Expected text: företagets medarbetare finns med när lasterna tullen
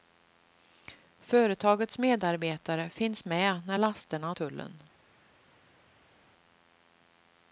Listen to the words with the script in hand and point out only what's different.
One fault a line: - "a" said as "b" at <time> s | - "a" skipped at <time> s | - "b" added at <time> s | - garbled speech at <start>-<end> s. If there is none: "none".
none